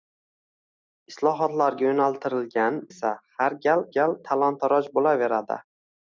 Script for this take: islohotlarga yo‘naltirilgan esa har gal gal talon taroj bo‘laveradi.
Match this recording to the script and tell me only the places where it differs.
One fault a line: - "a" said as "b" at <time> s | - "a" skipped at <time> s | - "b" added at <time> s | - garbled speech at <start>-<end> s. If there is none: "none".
none